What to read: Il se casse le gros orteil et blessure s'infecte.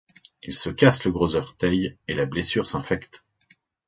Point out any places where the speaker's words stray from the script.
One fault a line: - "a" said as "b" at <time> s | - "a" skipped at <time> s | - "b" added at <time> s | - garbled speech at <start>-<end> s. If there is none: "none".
- "la" added at 2.1 s